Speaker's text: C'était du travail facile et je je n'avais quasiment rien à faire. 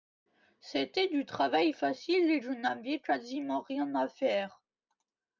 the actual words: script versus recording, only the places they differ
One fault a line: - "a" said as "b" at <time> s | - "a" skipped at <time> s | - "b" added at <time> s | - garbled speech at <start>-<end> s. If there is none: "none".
- "je" skipped at 2.5 s